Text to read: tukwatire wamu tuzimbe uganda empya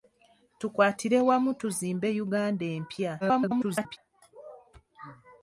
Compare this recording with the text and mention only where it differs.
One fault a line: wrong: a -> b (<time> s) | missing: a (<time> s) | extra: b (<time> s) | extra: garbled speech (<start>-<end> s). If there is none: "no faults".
extra: garbled speech (3.2-4.0 s)